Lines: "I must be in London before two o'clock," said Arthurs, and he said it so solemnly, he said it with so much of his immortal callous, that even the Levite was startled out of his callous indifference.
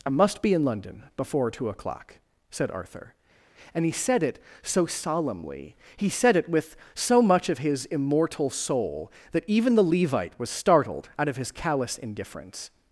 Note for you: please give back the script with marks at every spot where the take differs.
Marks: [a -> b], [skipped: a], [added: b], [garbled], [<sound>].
"I must be in London before two o'clock," said [Arthurs, -> Arthur] and he said it so solemnly, he said it with so much of his immortal [callous, -> soul] that even the Levite was startled out of his callous indifference.